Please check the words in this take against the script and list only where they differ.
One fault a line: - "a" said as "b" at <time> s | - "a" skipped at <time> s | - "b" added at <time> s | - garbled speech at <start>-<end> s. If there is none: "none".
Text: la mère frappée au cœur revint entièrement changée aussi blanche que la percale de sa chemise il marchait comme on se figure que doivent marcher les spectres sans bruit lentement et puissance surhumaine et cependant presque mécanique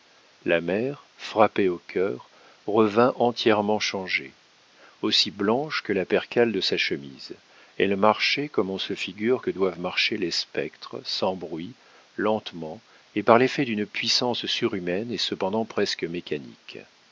- "il" said as "elle" at 7.8 s
- "par l'effet d'une" added at 13.2 s